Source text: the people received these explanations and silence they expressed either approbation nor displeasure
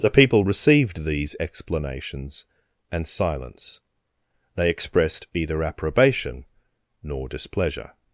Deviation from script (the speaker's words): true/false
false